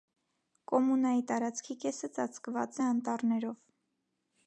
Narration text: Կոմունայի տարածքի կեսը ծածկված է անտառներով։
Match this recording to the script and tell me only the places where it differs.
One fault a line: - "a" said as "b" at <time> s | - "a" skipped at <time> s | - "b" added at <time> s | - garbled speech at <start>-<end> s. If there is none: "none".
none